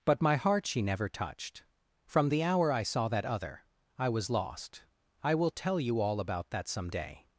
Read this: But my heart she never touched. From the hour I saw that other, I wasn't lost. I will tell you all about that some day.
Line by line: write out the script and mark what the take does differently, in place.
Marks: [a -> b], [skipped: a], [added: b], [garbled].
But my heart she never touched. From the hour I saw that other, I [wasn't -> was] lost. I will tell you all about that some day.